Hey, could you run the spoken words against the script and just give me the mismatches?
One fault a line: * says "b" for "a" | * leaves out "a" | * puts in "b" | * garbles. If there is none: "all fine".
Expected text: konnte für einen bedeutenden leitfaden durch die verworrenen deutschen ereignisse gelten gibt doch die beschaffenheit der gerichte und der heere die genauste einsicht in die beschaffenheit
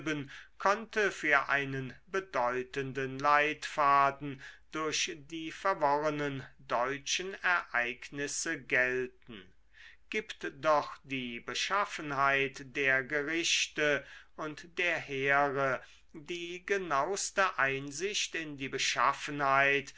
all fine